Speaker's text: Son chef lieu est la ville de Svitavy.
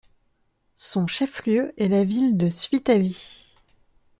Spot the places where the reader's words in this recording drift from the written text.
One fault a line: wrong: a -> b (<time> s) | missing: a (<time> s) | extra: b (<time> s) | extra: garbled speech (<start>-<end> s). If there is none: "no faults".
no faults